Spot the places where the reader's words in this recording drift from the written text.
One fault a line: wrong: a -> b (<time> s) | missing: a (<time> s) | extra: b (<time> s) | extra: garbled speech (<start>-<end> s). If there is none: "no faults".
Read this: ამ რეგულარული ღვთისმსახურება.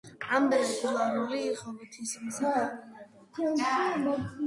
no faults